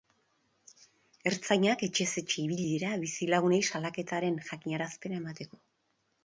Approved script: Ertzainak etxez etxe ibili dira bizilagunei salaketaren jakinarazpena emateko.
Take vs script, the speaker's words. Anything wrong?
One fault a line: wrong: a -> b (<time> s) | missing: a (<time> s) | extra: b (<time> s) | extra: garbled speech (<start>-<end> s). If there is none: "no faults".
no faults